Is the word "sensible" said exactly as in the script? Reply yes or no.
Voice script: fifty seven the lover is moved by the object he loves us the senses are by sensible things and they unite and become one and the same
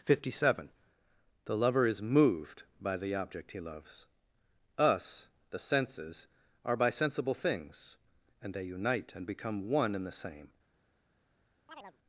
yes